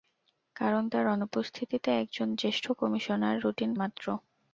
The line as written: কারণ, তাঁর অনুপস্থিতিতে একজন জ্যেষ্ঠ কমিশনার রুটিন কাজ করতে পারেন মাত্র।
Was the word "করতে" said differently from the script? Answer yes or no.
yes